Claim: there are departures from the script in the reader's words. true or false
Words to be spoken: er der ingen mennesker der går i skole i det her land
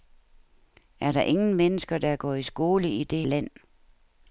true